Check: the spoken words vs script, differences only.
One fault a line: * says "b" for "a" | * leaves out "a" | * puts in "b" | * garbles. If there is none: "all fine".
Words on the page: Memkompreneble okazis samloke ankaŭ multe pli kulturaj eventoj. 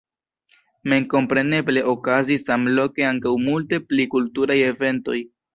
all fine